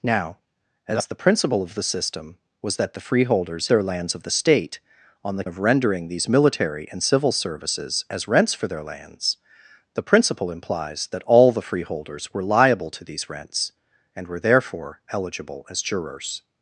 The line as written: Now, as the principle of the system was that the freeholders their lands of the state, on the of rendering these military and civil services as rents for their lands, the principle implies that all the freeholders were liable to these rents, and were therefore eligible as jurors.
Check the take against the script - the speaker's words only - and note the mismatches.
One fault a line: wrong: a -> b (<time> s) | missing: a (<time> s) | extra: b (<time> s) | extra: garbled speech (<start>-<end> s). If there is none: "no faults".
no faults